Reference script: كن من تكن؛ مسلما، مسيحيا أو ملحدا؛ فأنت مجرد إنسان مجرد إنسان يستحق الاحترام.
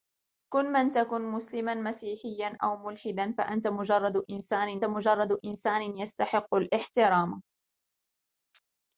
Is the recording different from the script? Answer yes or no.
no